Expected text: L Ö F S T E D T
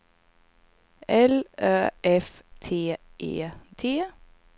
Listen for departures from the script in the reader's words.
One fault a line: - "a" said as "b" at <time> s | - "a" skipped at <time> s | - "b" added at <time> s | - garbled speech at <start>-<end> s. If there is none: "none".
- "S" skipped at 2.4 s
- "D" skipped at 3.5 s